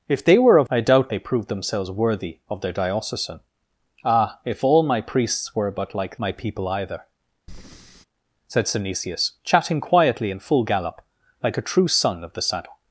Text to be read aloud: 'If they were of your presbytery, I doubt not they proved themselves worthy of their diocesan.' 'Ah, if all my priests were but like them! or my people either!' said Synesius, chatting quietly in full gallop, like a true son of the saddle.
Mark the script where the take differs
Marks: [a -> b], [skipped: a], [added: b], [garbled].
'If they were of [skipped: your presbytery,] I doubt [skipped: not] they proved themselves worthy of their diocesan.' 'Ah, if all my priests were but like [skipped: them! or] my people either!' said Synesius, chatting quietly in full gallop, like a true son of the saddle.